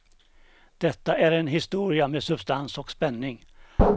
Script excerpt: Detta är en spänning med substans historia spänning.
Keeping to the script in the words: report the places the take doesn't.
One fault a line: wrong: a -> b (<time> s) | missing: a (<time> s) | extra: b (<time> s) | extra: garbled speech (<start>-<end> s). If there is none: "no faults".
wrong: spänning -> historia (1.5 s)
wrong: historia -> och (2.8 s)